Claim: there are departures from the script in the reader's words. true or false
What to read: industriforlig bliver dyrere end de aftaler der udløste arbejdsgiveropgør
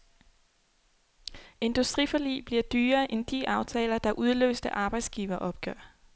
false